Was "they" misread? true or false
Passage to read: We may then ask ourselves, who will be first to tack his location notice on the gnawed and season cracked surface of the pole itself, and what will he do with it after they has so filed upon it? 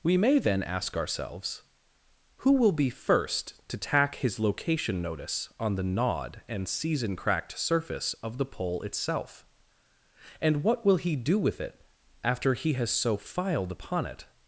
true